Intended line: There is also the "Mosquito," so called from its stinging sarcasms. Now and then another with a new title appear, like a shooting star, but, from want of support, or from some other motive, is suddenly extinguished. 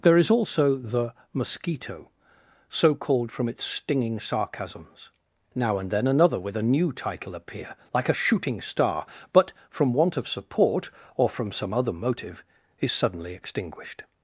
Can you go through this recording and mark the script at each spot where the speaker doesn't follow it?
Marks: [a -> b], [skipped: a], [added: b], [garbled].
There is also the "Mosquito," so called from its stinging sarcasms. Now and then another with a new title appear, like a shooting star, but, from want of support, or from some other motive, is suddenly extinguished.